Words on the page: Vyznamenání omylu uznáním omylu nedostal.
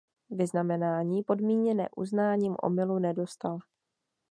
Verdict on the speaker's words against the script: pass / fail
fail